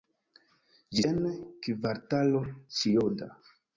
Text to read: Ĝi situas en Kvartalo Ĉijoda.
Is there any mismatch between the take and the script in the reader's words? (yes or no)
yes